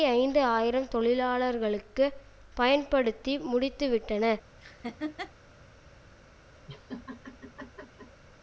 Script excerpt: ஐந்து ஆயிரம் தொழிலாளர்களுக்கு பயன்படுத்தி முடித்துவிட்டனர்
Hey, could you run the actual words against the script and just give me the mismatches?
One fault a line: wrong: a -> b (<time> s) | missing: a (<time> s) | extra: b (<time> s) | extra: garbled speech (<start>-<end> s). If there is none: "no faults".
no faults